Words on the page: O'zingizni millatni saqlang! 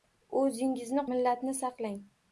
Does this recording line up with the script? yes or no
yes